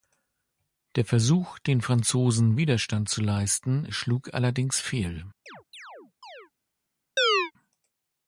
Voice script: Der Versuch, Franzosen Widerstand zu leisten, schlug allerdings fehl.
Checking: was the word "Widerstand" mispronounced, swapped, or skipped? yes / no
no